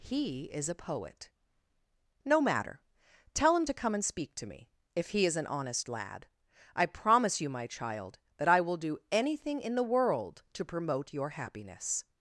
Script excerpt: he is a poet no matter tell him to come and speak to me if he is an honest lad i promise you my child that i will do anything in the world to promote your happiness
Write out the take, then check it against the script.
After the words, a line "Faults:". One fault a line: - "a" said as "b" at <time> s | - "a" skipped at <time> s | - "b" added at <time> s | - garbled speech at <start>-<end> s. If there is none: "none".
he is a poet no matter tell him to come and speak to me if he is an honest lad i promise you my child that i will do anything in the world to promote your happiness
Faults:
none